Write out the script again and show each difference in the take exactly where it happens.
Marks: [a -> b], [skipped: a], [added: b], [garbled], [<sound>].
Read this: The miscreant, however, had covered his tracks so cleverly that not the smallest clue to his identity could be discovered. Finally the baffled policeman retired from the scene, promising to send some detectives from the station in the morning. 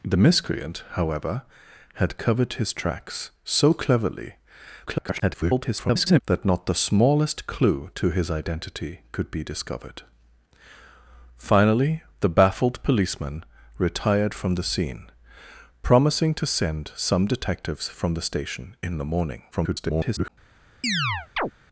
The miscreant, however, had covered his tracks so cleverly [garbled] that not the smallest clue to his identity could be discovered. Finally the baffled policeman retired from the scene, promising to send some detectives from the station in the morning. [garbled] [chirp]